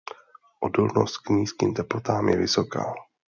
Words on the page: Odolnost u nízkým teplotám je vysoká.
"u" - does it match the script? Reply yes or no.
no